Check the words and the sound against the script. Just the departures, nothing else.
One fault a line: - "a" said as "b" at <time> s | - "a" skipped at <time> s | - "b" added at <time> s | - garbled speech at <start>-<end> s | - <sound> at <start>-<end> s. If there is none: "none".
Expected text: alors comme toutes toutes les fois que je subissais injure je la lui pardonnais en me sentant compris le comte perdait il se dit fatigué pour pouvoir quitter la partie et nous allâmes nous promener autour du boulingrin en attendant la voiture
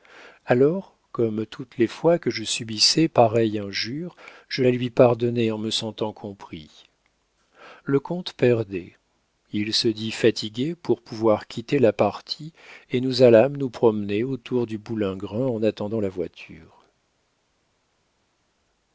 - "toutes" skipped at 1.8 s
- "pareille" added at 3.1 s